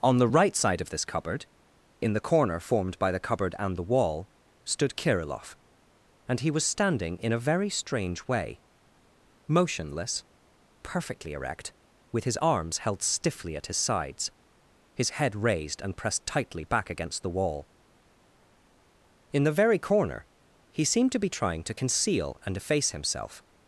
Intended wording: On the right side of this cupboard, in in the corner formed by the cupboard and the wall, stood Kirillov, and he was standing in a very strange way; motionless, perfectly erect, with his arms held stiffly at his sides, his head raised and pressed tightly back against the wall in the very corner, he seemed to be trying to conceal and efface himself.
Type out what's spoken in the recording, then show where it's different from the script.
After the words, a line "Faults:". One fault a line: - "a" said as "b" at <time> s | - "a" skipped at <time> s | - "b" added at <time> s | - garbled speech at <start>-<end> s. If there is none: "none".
On the right side of this cupboard, in the corner formed by the cupboard and the wall, stood Kirillov, and he was standing in a very strange way; motionless, perfectly erect, with his arms held stiffly at his sides, his head raised and pressed tightly back against the wall in the very corner, he seemed to be trying to conceal and efface himself.
Faults:
- "in" skipped at 2.1 s